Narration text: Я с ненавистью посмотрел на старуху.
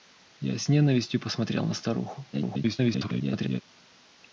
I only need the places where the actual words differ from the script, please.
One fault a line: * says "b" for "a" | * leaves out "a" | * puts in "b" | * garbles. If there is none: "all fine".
* garbles